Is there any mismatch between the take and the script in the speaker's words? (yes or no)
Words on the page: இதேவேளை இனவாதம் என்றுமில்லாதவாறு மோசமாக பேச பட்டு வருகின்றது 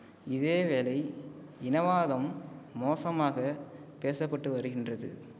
yes